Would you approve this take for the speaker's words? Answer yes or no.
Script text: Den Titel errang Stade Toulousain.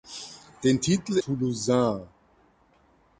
no